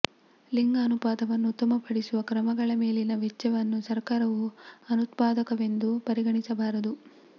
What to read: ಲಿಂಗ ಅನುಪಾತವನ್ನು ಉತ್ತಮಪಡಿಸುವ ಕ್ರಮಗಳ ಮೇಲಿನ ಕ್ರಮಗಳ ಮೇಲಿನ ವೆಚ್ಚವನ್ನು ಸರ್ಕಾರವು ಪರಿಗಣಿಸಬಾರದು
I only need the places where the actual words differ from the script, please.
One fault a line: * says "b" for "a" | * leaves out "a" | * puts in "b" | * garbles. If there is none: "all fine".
* leaves out "ಕ್ರಮಗಳ ಮೇಲಿನ"
* puts in "ಅನುತ್ಪಾದಕವೆಂದು"